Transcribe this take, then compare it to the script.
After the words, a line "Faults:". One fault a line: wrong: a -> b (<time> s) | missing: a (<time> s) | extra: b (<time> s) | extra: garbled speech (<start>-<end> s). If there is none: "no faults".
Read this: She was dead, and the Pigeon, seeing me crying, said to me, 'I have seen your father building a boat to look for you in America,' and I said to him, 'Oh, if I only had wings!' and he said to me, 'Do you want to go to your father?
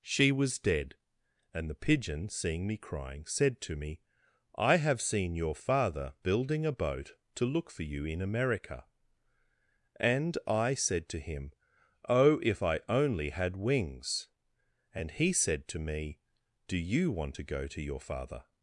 She was dead, and the Pigeon, seeing me crying, said to me, 'I have seen your father building a boat to look for you in America,' and I said to him, 'Oh, if I only had wings!' and he said to me, 'Do you want to go to your father?
Faults:
no faults